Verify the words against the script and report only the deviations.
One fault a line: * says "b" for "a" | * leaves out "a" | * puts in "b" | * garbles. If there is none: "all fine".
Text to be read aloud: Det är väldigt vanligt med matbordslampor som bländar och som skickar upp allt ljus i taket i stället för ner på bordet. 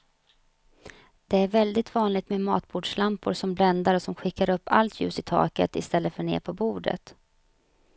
all fine